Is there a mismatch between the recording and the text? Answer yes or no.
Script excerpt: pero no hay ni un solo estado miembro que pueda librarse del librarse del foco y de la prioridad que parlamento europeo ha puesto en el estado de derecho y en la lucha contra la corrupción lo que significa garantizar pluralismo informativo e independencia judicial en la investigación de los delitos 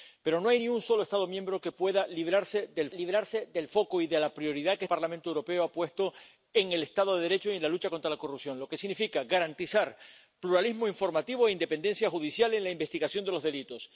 no